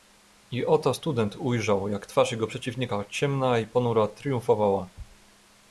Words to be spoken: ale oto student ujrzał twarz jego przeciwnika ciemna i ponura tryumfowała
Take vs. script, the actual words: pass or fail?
fail